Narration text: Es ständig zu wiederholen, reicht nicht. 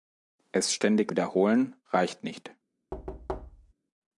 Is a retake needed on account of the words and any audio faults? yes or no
yes